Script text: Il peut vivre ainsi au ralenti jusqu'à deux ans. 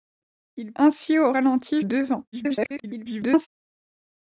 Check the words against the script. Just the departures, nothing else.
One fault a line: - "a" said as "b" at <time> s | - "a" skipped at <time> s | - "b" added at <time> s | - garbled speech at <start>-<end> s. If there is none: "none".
- "peut vivre" skipped at 0.7 s
- "jusqu'à" skipped at 1.8 s
- garbled speech at 2.3-3.5 s